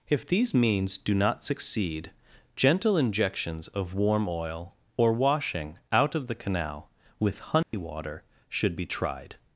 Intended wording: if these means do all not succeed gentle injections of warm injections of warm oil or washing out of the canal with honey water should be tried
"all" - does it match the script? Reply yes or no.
no